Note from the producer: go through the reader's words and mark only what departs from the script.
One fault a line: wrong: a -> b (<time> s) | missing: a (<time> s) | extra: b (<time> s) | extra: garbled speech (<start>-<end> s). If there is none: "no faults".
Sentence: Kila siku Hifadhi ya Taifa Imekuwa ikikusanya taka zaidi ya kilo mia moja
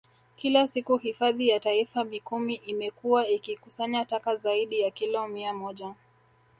extra: Mikumi (2.0 s)